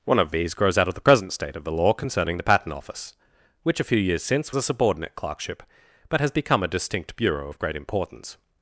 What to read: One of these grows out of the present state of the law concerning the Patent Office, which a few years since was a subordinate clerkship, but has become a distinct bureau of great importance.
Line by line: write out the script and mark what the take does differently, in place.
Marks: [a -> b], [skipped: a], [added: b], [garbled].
One of these grows out of the present state of the law concerning the Patent Office, which a few years since [skipped: was] a subordinate clerkship, but has become a distinct bureau of great importance.